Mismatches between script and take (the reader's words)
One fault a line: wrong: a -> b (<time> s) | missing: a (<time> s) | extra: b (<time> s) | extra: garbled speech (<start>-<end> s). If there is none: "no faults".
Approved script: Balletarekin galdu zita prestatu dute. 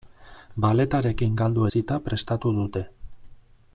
no faults